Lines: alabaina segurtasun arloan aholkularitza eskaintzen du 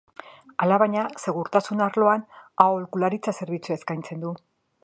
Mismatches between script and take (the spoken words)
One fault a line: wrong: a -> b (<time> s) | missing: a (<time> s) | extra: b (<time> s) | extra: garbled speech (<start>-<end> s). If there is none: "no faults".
extra: zerbitzua (3.4 s)